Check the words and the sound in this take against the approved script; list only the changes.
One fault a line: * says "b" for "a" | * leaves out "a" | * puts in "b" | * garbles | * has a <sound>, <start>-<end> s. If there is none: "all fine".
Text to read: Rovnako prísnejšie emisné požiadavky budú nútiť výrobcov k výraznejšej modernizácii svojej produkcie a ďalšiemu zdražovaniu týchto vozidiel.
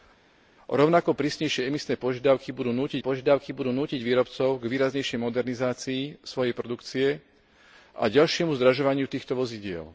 * puts in "požiadavky budú nútiť"